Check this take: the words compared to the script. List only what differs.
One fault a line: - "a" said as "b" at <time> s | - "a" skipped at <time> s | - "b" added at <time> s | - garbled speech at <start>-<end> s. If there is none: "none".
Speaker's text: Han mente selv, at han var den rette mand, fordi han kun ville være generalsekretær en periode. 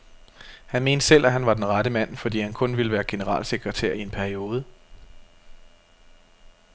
- "i" added at 3.9 s